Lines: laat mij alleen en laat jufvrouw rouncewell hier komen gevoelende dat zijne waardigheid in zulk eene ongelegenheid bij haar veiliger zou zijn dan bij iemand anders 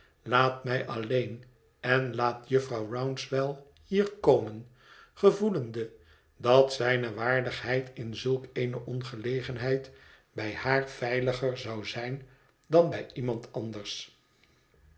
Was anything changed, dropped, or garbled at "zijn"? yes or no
no